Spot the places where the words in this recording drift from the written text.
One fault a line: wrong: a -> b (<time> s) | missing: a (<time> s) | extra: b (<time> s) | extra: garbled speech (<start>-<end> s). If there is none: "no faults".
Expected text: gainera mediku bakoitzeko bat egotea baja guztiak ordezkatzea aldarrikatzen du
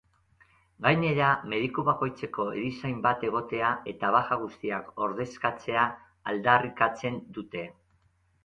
extra: erizain (2.6 s)
extra: eta (3.9 s)
wrong: du -> dute (7.4 s)